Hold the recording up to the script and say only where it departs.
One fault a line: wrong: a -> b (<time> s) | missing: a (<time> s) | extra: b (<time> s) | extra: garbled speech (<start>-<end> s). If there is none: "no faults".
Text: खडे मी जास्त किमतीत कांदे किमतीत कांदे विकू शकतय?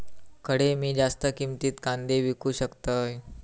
missing: किमतीत कांदे (2.2 s)